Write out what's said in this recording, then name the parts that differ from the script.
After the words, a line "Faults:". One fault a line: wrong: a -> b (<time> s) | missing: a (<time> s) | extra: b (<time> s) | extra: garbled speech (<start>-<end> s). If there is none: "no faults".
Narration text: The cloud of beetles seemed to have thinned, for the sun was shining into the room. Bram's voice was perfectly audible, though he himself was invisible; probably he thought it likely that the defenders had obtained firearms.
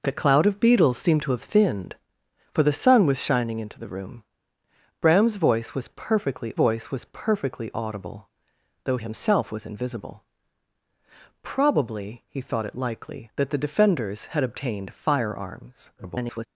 The cloud of beetles seemed to have thinned, for the sun was shining into the room. Bram's voice was perfectly voice was perfectly audible, though himself was invisible; probably he thought it likely that the defenders had obtained firearms. [garbled]
Faults:
extra: voice was perfectly (6.5 s)
missing: he (9.0 s)
extra: garbled speech (16.0-16.5 s)